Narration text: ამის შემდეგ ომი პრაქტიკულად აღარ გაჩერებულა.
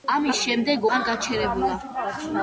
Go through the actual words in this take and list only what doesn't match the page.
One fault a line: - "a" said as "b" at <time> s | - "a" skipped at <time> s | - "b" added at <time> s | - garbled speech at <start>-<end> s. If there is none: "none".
- "ომი პრაქტიკულად" skipped at 0.9 s